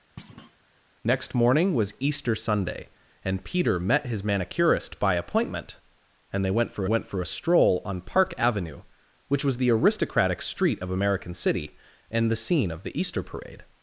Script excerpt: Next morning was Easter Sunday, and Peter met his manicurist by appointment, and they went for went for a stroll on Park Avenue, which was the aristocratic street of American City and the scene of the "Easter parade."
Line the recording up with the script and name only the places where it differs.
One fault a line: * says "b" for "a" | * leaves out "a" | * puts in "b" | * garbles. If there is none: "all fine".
all fine